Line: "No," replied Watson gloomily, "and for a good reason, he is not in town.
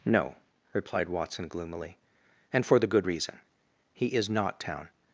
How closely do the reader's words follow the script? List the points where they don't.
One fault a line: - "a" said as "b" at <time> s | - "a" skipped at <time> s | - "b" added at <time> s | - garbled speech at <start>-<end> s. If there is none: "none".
- "a" said as "the" at 2.8 s
- "in" skipped at 4.6 s